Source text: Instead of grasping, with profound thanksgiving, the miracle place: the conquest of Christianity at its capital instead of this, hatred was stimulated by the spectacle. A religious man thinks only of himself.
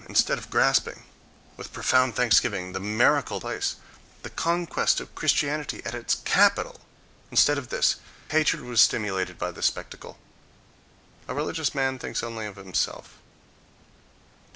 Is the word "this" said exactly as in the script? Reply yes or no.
yes